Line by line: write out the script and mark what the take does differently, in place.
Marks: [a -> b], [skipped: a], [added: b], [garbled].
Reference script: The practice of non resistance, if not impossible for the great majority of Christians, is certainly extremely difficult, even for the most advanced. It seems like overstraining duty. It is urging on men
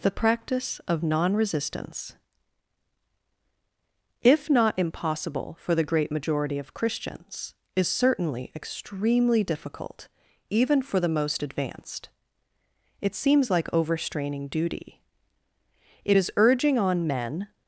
The practice of non resistance, if not impossible for the great majority of Christians, is certainly extremely difficult, even for the most advanced. It seems like overstraining duty. It is urging on men